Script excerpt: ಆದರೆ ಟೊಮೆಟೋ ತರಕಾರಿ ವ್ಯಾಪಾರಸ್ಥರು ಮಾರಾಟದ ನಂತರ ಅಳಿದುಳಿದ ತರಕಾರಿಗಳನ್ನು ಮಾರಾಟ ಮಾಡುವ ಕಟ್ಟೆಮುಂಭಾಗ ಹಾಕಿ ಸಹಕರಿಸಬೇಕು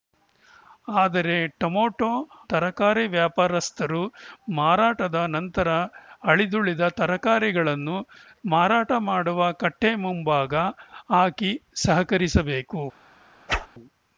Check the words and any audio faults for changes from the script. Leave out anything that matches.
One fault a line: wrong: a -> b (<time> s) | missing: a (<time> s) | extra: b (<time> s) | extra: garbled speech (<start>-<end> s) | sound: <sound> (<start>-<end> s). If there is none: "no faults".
sound: whoosh (13.5-13.7 s)